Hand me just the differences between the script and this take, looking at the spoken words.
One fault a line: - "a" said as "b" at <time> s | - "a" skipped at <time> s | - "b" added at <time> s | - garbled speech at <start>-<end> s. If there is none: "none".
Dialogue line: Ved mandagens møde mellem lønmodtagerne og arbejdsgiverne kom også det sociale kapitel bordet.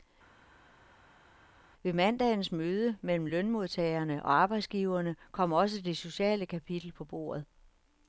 - "på" added at 6.9 s